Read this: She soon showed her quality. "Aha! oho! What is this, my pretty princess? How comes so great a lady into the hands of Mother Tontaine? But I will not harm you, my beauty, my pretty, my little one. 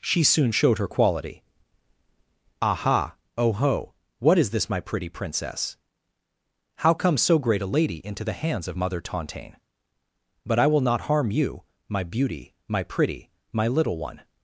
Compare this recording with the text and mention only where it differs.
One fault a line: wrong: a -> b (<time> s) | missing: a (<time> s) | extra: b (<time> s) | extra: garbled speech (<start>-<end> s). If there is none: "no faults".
no faults